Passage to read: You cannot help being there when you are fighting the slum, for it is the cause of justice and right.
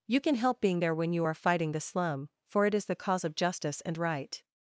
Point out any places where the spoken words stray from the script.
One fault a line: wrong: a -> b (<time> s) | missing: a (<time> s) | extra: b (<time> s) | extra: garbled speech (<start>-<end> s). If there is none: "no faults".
wrong: cannot -> can (0.2 s)